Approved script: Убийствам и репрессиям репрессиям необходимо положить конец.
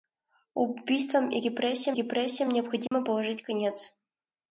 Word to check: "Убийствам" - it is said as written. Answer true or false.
true